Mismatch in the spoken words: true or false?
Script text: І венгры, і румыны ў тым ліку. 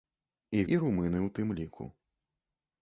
true